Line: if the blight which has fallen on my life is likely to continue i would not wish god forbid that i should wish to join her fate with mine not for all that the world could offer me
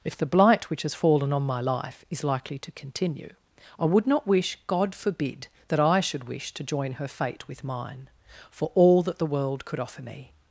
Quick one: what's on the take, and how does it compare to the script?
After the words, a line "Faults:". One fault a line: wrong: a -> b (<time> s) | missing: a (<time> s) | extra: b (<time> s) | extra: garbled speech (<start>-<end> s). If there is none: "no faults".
if the blight which has fallen on my life is likely to continue i would not wish god forbid that i should wish to join her fate with mine for all that the world could offer me
Faults:
missing: not (8.1 s)